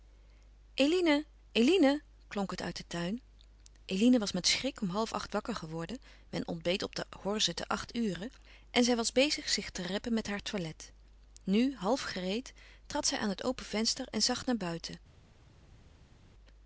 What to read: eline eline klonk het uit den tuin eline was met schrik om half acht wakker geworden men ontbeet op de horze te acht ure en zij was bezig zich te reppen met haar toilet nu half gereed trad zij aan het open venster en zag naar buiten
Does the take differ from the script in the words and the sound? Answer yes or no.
no